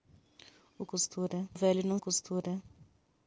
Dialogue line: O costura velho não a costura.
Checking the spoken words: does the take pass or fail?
pass